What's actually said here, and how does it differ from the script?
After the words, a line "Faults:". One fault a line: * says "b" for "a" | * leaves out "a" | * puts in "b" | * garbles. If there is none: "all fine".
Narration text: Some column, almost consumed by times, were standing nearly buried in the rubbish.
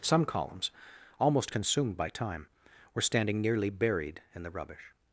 Some columns, almost consumed by time, were standing nearly buried in the rubbish.
Faults:
* says "columns" for "column"
* says "time" for "times"